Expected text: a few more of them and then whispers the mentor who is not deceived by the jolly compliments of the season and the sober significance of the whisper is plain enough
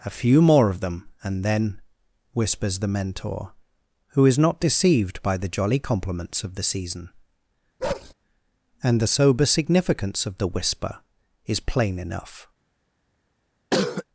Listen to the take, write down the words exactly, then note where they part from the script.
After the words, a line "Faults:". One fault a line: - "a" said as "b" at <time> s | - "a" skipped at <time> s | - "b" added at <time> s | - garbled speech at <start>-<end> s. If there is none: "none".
a few more of them and then whispers the mentor who is not deceived by the jolly compliments of the season and the sober significance of the whisper is plain enough
Faults:
none